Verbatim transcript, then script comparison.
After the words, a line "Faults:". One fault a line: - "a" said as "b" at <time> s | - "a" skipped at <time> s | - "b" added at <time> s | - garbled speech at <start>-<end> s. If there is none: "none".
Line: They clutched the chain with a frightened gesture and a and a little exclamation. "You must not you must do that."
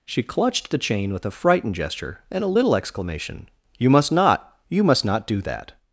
She clutched the chain with a frightened gesture and a little exclamation. "You must not you must not do that."
Faults:
- "They" said as "She" at 0.1 s
- "and a" skipped at 2.5 s
- "not" added at 5.0 s